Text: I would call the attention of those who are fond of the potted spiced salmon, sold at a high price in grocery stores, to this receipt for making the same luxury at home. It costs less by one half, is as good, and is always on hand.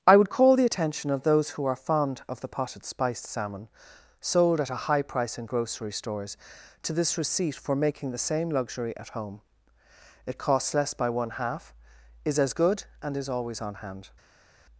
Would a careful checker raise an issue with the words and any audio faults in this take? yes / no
no